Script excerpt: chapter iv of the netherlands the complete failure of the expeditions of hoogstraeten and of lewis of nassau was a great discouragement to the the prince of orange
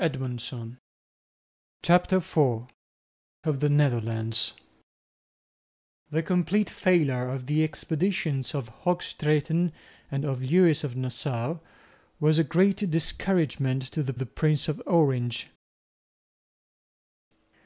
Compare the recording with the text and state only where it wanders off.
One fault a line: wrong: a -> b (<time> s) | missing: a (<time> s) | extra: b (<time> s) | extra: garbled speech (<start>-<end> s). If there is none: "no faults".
no faults